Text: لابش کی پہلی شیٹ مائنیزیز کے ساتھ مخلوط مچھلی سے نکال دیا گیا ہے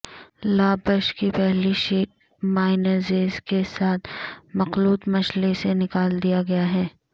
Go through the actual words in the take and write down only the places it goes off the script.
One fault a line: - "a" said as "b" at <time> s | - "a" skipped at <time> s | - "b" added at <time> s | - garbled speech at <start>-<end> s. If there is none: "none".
none